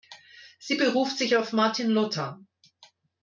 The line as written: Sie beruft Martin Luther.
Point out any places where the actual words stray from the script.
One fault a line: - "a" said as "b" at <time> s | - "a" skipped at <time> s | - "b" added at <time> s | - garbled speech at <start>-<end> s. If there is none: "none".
- "sich auf" added at 1.1 s